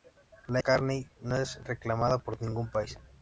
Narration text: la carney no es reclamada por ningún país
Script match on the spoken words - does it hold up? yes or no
yes